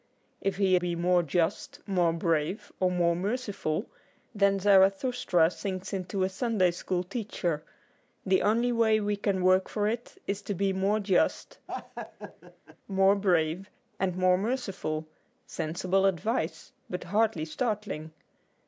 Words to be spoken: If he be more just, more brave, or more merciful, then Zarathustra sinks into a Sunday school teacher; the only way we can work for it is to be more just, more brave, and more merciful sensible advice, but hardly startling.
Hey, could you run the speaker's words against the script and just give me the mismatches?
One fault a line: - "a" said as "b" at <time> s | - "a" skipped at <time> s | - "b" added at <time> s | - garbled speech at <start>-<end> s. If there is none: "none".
none